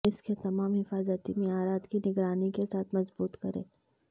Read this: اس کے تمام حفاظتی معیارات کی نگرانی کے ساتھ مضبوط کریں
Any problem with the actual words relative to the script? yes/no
no